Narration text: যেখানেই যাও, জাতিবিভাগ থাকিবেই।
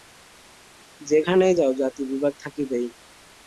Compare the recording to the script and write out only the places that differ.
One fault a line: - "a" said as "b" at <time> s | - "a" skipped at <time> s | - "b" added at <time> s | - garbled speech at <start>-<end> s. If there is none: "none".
none